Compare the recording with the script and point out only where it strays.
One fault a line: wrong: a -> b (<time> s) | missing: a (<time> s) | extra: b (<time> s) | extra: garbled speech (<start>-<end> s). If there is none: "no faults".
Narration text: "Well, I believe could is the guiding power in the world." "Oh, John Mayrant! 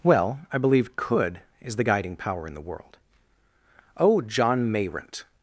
no faults